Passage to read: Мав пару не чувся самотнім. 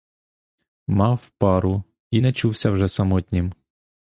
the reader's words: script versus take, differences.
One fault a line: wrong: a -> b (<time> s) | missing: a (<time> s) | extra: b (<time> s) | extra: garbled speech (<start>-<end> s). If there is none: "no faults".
extra: і (2.1 s)
extra: вже (2.7 s)